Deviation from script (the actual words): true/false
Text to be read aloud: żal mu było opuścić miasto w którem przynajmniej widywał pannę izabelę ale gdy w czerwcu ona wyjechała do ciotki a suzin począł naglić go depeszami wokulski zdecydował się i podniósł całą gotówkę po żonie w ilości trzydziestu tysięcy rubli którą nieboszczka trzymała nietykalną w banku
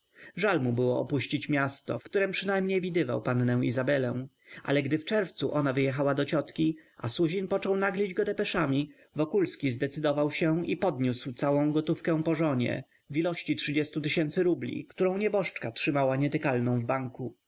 false